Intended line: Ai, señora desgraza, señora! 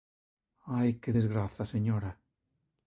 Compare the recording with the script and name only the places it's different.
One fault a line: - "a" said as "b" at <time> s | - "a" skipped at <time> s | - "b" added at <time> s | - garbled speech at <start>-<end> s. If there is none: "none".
- "señora" said as "que" at 1.0 s